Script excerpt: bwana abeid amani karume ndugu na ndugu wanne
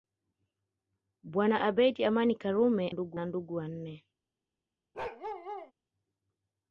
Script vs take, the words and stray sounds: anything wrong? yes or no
yes